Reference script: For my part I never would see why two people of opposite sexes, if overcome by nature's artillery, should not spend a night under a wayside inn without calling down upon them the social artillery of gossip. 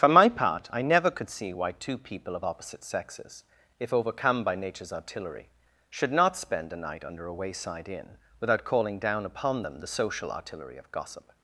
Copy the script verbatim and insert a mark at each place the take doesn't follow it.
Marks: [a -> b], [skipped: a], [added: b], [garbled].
For my part I never [would -> could] see why two people of opposite sexes, if overcome by nature's artillery, should not spend a night under a wayside inn without calling down upon them the social artillery of gossip.